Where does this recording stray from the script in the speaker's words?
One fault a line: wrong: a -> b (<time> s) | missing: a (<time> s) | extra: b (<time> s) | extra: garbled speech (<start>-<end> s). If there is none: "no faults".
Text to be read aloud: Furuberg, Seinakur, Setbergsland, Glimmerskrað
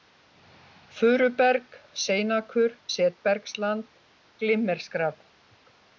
no faults